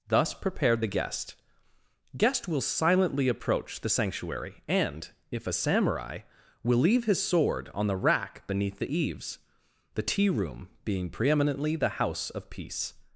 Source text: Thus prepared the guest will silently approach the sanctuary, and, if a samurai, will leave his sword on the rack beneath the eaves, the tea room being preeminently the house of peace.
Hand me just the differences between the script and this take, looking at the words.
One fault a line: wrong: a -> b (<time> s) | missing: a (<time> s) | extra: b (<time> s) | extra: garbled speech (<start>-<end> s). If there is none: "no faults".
extra: guest (2.2 s)